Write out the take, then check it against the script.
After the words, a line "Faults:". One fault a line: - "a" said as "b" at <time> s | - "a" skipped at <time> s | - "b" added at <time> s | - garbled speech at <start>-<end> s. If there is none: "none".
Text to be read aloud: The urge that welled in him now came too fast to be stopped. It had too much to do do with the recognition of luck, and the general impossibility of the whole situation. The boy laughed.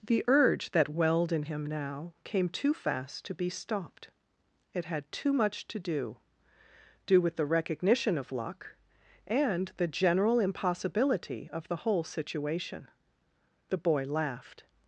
The urge that welled in him now came too fast to be stopped. It had too much to do do with the recognition of luck, and the general impossibility of the whole situation. The boy laughed.
Faults:
none